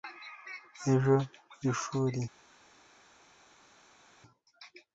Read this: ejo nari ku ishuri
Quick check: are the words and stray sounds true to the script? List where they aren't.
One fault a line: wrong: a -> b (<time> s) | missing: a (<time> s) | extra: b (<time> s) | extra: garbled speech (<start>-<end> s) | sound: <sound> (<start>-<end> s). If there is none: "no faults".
missing: nari ku (1.1 s)